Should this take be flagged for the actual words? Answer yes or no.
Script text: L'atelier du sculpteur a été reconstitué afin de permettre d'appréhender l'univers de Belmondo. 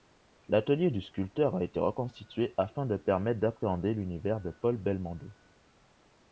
yes